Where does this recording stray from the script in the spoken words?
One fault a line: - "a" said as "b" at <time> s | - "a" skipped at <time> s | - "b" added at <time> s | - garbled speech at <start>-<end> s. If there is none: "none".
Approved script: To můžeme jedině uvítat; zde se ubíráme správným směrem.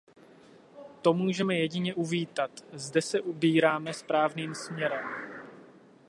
none